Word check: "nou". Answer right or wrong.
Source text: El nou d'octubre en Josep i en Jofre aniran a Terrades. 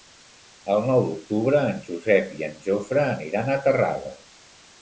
right